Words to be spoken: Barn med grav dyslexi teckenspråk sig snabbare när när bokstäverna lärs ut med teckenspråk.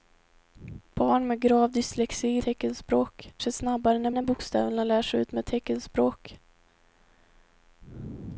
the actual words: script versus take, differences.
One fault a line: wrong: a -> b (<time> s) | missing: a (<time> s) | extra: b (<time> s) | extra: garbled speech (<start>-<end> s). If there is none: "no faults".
no faults